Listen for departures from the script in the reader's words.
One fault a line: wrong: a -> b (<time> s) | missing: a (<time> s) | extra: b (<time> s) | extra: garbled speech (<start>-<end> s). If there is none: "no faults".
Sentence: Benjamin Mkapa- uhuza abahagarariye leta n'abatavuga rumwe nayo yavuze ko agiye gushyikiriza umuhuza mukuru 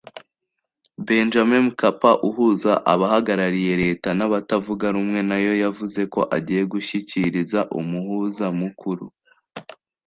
no faults